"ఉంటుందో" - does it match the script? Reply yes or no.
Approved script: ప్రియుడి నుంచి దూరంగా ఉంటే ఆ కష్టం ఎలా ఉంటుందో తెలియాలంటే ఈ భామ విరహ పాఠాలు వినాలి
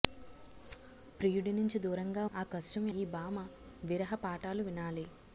no